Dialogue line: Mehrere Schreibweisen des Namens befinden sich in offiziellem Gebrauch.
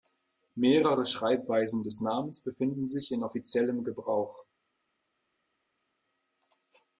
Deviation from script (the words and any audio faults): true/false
false